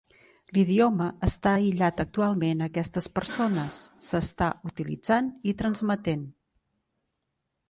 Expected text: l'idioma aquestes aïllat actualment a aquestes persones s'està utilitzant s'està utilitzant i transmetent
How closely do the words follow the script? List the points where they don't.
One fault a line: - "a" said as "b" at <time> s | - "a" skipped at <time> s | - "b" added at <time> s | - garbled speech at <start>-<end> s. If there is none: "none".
- "aquestes" said as "està" at 1.3 s
- "s'està utilitzant" skipped at 5.3 s